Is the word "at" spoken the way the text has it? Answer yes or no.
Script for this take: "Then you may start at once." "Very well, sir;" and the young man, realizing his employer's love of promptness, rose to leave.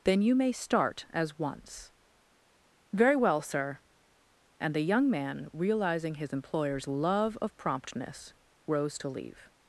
no